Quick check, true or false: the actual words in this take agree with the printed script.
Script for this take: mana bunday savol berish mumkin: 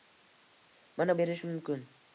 false